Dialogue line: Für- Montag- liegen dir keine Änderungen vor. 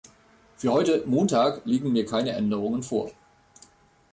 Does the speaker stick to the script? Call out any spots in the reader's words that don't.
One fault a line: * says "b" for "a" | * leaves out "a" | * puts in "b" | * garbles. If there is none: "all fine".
* puts in "heute"
* says "mir" for "dir"